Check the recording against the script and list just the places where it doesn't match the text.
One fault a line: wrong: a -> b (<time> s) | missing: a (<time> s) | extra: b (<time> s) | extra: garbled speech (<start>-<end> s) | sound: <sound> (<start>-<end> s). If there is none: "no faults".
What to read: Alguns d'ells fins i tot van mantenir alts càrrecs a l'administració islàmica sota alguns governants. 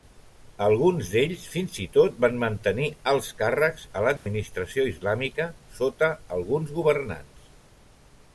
sound: dropout (4.2-4.3 s)